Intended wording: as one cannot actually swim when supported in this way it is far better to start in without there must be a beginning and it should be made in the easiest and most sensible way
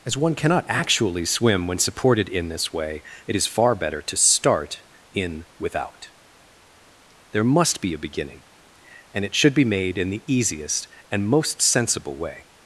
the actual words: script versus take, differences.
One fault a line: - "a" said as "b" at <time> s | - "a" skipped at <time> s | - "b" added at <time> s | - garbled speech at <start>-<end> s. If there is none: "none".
none